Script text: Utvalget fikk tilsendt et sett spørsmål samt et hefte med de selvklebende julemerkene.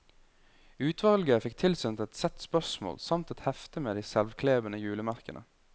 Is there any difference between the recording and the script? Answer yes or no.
no